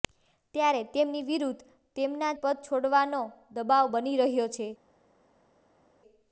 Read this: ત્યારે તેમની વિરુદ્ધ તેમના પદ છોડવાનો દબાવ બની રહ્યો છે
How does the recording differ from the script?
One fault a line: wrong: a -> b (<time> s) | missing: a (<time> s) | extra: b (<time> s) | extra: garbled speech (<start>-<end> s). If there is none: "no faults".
no faults